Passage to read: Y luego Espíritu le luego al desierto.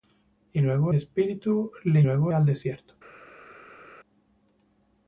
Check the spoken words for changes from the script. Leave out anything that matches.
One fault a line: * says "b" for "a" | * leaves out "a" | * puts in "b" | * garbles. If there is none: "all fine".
all fine